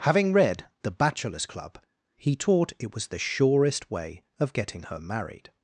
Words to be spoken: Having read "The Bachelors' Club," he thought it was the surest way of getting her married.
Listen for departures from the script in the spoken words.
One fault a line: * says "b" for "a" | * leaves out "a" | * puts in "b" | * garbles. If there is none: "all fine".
* says "taught" for "thought"